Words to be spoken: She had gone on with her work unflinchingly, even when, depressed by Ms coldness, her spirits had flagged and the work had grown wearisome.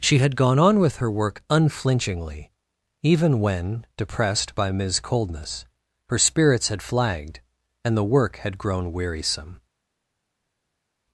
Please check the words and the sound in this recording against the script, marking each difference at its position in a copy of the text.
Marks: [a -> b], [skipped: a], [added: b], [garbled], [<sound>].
She had gone on with her work unflinchingly, even when, depressed by Ms coldness, her spirits had flagged and the work had grown wearisome.